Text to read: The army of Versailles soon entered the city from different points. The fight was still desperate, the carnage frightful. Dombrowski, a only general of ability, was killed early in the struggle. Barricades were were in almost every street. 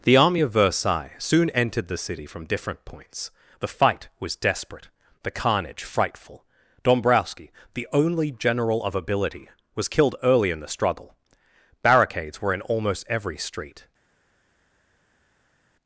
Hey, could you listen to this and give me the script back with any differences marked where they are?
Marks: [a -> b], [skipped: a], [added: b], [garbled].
The army of Versailles soon entered the city from different points. The fight was [skipped: still] desperate, the carnage frightful. Dombrowski, [a -> the] only general of ability, was killed early in the struggle. Barricades were [skipped: were] in almost every street.